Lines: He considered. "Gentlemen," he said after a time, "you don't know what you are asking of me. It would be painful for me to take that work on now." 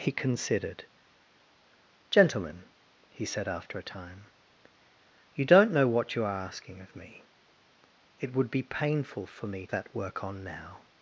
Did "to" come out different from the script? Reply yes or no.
yes